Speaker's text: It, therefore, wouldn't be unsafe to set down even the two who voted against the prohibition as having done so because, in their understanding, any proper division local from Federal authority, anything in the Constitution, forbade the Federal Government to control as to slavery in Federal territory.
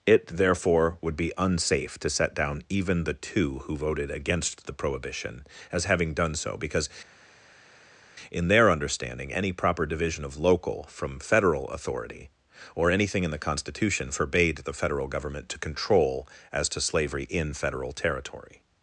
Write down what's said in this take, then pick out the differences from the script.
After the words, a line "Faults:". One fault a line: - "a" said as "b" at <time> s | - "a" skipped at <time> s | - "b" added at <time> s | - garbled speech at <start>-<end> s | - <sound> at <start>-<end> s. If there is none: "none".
It, therefore, would be unsafe to set down even the two who voted against the prohibition as having done so because, in their understanding, any proper division of local from Federal authority, or anything in the Constitution, forbade the Federal Government to control as to slavery in Federal territory.
Faults:
- "wouldn't" said as "would" at 1.0 s
- "of" added at 10.2 s
- "or" added at 12.7 s